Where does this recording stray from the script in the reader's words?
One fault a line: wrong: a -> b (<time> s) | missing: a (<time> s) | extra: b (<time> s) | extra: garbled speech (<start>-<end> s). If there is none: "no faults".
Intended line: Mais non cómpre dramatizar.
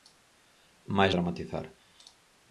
missing: non cómpre (1.1 s)